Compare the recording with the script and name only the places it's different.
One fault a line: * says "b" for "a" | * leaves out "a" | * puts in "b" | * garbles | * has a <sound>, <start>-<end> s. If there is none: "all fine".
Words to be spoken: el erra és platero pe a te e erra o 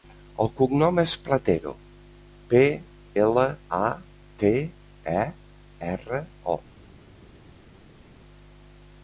* says "cognom" for "erra"
* puts in "ela"